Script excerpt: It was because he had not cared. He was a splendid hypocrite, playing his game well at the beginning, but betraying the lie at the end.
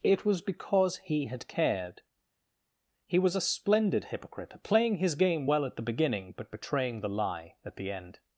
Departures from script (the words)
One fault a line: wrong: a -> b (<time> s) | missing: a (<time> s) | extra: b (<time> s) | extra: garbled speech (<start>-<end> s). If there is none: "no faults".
missing: not (1.5 s)